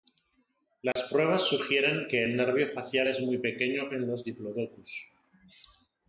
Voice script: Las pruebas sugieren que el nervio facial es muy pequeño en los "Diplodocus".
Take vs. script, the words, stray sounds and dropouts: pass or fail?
fail